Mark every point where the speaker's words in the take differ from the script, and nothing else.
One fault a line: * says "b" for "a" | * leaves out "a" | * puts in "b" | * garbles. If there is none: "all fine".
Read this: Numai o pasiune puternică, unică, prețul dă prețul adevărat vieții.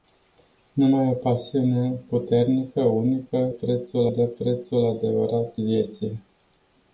all fine